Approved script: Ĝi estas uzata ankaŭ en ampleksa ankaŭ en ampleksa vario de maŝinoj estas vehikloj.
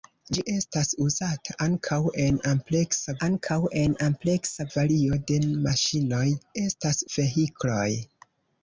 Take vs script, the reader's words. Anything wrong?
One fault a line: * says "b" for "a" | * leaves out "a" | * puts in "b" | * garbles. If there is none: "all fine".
all fine